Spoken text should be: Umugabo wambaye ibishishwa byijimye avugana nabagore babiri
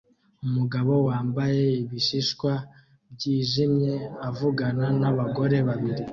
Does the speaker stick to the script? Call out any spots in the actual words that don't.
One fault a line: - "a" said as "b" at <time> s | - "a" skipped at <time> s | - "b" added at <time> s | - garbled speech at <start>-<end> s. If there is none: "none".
none